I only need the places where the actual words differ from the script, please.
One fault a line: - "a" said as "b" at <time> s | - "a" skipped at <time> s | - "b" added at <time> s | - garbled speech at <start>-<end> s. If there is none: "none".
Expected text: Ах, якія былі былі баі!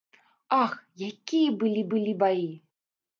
none